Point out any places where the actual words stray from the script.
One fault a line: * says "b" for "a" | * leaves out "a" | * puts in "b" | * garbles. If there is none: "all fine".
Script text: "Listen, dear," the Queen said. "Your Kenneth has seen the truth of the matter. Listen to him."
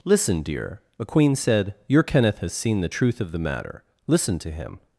* says "a" for "the"